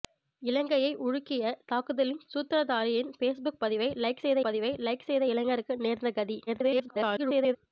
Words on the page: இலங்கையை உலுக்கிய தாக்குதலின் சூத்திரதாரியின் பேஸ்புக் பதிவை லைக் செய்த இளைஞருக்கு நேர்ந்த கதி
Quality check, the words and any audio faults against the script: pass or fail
fail